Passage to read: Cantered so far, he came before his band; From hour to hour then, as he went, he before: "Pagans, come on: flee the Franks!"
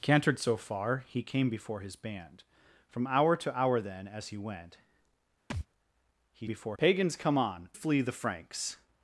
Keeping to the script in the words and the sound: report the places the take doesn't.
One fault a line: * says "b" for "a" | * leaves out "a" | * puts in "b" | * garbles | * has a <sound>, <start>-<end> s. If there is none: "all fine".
* has a thud, 5.5-5.7 s